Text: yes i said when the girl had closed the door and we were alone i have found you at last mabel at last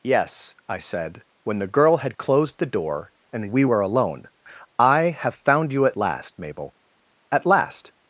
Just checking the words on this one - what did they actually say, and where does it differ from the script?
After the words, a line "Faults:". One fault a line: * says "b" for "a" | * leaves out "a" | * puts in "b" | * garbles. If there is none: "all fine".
yes i said when the girl had closed the door and we were alone i have found you at last mabel at last
Faults:
all fine